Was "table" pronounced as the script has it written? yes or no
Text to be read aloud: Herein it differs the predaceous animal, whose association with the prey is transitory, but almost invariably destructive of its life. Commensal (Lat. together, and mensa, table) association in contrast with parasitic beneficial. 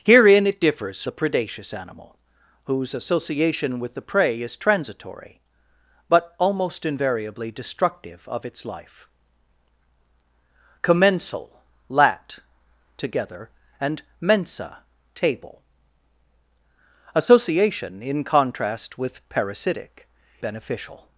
yes